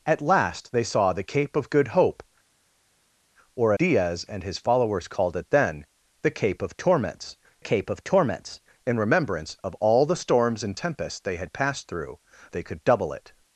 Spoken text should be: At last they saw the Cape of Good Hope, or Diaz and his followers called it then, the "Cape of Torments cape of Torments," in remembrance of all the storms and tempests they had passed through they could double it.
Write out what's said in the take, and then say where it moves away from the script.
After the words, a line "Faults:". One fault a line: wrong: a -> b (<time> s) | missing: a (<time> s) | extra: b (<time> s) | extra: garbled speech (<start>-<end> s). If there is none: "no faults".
At last they saw the Cape of Good Hope, or Diaz and his followers called it then, the "Cape of Torments cape of Torments," in remembrance of all the storms and tempests they had passed through they could double it.
Faults:
no faults